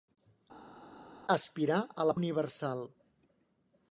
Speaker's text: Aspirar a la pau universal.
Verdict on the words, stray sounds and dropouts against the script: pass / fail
fail